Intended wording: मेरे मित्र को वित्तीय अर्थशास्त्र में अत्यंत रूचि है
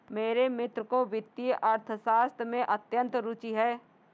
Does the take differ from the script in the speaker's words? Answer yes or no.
no